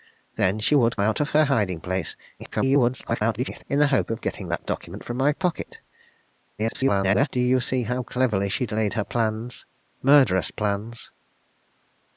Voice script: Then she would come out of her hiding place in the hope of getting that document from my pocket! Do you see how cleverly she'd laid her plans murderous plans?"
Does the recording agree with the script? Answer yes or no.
no